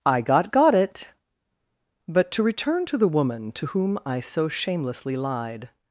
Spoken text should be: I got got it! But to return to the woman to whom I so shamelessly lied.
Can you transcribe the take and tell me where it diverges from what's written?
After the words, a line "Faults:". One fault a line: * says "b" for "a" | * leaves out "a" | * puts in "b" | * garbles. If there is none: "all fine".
I got got it! But to return to the woman to whom I so shamelessly lied.
Faults:
all fine